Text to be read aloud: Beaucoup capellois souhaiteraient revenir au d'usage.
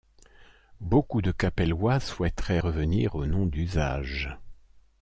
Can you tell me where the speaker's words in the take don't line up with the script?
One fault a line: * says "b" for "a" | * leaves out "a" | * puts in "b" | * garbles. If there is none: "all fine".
* puts in "de"
* puts in "nom"